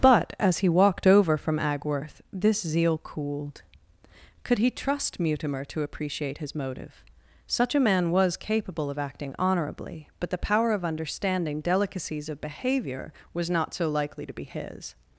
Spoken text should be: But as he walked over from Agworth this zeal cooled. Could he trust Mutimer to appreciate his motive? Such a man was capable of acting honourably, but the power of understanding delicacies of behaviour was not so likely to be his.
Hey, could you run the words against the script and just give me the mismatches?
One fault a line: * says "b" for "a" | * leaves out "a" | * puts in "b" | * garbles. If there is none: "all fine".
all fine